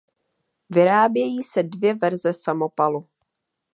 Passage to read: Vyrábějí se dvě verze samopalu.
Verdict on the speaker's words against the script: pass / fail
pass